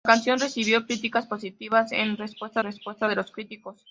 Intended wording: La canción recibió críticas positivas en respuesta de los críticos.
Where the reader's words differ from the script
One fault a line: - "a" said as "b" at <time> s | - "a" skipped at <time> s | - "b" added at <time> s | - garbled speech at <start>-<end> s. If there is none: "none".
- "respuesta" added at 2.6 s